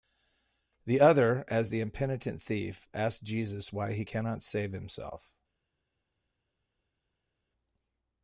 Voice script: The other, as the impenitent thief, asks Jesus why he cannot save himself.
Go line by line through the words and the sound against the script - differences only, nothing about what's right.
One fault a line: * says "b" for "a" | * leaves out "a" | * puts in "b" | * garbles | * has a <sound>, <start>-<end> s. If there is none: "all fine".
all fine